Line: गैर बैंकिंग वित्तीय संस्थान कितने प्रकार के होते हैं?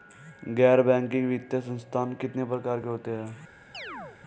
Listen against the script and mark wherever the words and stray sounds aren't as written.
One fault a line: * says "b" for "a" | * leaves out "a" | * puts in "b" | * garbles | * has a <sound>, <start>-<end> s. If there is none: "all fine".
* has a chirp, 3.7-4.2 s